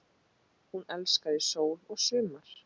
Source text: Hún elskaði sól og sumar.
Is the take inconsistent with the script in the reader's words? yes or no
no